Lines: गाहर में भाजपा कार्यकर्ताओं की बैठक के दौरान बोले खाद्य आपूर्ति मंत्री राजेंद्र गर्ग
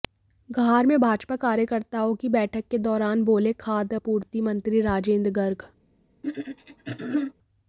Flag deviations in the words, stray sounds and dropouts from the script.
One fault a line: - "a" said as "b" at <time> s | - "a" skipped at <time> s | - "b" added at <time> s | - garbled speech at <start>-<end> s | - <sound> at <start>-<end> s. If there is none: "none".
- throat clearing at 6.2-7.3 s